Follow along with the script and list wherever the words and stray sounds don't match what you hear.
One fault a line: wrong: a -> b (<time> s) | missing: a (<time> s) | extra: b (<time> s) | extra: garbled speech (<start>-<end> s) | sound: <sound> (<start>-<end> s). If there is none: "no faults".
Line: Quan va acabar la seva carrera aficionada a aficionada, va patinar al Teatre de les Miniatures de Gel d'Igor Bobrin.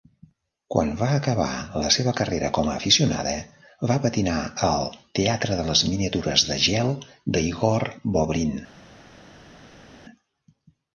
wrong: aficionada -> com (2.6 s)